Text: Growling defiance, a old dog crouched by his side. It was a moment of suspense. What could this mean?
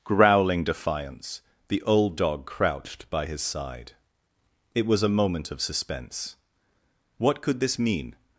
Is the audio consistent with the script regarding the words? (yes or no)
no